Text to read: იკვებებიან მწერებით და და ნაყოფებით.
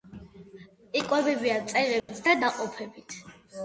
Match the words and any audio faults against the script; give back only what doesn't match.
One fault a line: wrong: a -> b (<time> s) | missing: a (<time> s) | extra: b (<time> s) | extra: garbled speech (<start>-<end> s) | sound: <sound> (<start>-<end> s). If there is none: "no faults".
sound: dropout (2.0-2.1 s)
missing: და (2.4 s)